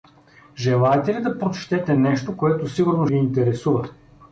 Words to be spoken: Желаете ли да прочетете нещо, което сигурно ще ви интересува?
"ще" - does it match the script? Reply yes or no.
no